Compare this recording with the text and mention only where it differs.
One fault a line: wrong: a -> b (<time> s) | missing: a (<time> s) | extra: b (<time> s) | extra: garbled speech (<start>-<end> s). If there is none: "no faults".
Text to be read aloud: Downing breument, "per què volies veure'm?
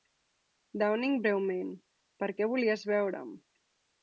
no faults